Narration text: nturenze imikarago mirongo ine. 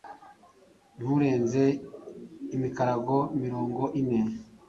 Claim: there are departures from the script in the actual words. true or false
false